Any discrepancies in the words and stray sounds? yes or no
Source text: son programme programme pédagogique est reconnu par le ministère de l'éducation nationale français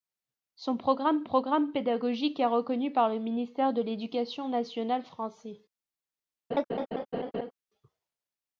yes